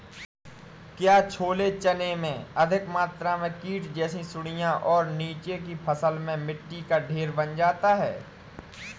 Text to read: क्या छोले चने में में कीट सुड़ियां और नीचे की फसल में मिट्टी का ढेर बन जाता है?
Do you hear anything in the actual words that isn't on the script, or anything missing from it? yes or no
yes